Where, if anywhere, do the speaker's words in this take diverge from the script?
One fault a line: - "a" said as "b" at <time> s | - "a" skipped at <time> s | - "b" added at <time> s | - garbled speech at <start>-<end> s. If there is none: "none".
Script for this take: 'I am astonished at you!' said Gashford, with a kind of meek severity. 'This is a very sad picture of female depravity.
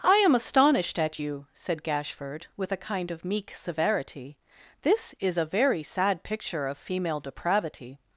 none